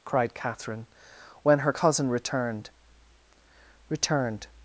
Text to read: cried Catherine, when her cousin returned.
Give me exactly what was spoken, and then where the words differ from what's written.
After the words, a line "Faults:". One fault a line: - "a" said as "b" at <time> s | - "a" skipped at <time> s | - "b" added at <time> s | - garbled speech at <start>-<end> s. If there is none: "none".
cried Catherine, when her cousin returned returned.
Faults:
- "returned" added at 3.9 s